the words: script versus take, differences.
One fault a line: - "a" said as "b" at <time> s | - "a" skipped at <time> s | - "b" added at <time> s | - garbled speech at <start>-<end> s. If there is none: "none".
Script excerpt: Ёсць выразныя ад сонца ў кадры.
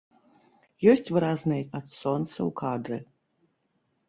none